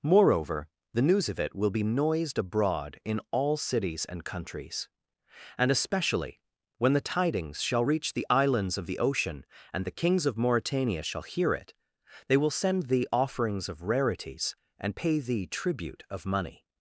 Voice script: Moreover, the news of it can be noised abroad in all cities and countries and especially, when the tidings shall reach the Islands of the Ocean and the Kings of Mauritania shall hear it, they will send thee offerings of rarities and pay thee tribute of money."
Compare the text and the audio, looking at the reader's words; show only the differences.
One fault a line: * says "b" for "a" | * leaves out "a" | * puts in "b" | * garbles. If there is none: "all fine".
* says "will" for "can"